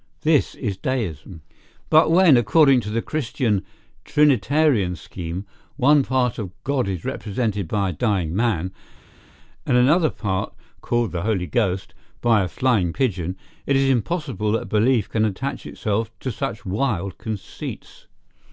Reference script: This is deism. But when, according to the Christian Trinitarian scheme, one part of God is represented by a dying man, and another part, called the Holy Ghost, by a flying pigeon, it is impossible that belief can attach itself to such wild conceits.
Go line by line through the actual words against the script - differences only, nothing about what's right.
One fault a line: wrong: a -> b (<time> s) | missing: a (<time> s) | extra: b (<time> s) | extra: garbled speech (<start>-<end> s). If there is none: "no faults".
no faults